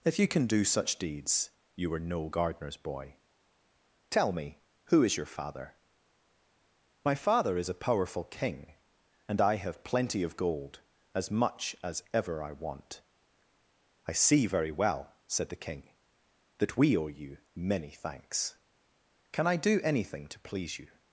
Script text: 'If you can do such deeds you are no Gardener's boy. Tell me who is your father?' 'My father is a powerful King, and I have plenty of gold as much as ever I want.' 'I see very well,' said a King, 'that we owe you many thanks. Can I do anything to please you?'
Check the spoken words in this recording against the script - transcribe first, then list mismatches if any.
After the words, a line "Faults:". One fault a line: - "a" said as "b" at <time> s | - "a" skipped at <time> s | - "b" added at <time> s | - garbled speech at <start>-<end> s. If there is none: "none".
'If you can do such deeds you are no Gardener's boy. Tell me who is your father?' 'My father is a powerful King, and I have plenty of gold as much as ever I want.' 'I see very well,' said the King, 'that we owe you many thanks. Can I do anything to please you?'
Faults:
- "a" said as "the" at 15.5 s